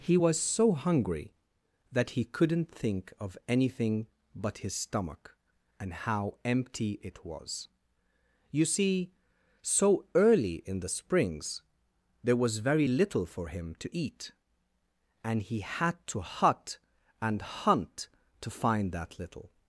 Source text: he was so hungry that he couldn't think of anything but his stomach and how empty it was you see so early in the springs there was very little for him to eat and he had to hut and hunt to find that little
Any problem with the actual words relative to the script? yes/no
no